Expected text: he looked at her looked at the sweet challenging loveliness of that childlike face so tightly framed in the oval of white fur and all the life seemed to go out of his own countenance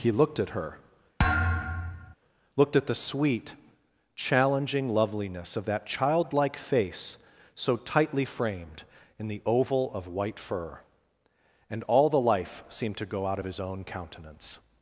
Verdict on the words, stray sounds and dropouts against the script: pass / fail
fail